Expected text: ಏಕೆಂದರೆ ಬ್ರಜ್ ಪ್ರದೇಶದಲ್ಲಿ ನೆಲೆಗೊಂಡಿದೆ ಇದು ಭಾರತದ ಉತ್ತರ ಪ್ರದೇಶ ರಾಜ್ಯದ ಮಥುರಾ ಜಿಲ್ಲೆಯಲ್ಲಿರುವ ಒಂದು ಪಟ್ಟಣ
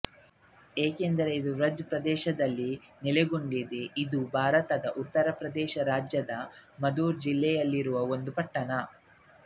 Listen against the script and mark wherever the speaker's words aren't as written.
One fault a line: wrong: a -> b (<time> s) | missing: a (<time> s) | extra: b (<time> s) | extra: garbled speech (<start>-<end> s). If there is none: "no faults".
extra: ಇದು (1.4 s)